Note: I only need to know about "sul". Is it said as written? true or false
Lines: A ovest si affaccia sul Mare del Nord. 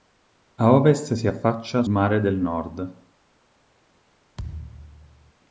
false